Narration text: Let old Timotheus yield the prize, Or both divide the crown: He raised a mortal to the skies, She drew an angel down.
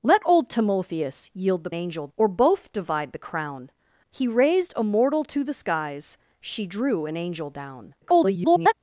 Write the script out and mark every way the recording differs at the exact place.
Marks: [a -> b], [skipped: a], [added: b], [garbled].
Let old Timotheus yield the [prize, -> angel] Or both divide the crown: He raised a mortal to the skies, She drew an angel down. [garbled]